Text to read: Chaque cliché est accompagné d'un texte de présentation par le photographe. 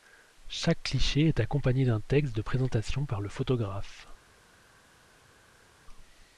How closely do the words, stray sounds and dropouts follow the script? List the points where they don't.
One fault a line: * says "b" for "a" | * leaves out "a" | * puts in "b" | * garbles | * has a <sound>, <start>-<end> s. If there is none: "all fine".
all fine